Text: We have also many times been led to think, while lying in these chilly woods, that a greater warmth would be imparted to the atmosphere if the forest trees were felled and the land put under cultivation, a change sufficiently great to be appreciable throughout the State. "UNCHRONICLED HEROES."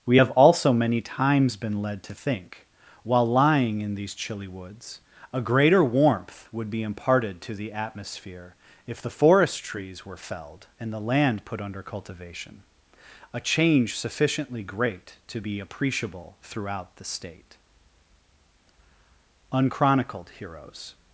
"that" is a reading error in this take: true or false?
true